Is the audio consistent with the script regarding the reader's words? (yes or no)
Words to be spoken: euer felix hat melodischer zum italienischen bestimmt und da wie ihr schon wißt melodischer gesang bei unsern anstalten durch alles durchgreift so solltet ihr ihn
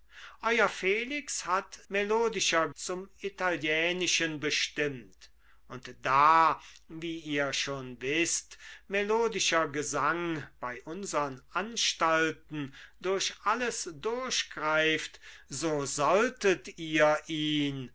yes